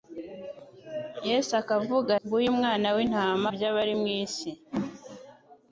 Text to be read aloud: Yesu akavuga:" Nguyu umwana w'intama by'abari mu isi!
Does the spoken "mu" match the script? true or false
true